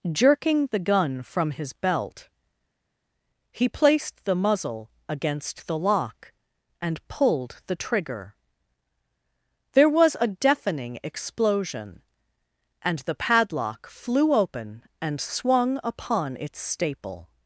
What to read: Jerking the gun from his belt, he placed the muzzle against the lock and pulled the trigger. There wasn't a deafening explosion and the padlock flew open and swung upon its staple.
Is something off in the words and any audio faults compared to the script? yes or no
yes